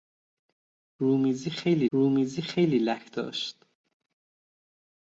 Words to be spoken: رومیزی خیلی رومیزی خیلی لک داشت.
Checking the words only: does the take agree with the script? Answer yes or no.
yes